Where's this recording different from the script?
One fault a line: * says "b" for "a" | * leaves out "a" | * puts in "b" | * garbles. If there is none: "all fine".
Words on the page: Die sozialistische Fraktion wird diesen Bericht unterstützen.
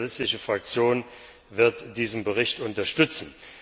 all fine